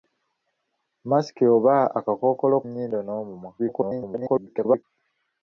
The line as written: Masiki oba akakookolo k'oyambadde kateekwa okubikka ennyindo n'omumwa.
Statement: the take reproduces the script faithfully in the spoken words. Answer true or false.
false